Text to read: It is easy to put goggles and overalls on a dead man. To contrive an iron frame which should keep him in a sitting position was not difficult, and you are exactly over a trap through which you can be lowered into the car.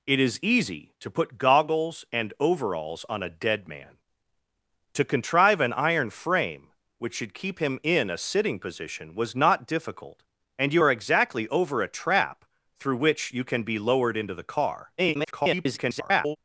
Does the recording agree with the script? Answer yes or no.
no